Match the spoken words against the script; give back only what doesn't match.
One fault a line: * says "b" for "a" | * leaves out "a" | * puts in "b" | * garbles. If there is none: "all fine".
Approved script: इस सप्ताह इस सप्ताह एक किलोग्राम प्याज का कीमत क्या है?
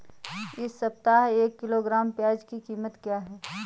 * leaves out "इस सप्ताह"
* says "की" for "का"